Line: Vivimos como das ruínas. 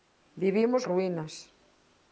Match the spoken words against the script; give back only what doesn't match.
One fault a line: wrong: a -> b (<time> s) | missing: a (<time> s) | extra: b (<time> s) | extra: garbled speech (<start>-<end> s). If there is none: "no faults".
missing: como das (0.9 s)